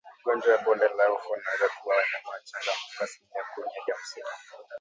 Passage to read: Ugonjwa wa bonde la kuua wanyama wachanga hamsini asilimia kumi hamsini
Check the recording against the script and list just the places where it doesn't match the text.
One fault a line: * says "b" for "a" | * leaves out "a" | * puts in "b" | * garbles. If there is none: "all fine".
* puts in "ufa unaweza"
* says "mpaka" for "hamsini"
* puts in "hadi"